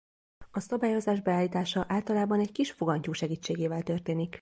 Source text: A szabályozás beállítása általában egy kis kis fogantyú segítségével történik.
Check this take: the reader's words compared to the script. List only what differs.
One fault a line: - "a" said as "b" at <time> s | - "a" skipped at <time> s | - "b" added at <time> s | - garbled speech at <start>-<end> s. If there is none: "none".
- "kis" skipped at 2.7 s